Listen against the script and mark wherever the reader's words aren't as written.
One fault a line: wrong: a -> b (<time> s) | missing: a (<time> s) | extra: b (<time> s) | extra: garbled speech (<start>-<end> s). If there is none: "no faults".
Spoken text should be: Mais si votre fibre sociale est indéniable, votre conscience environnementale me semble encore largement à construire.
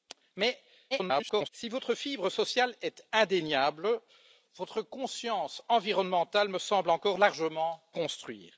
extra: garbled speech (0.9-1.5 s)
missing: à (7.8 s)